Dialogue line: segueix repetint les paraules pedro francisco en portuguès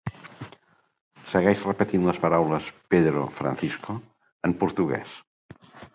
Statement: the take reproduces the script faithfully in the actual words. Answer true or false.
true